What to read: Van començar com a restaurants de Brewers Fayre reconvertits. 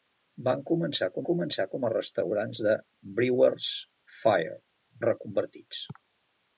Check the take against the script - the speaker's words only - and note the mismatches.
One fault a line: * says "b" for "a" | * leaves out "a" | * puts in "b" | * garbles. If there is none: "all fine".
* puts in "començar com"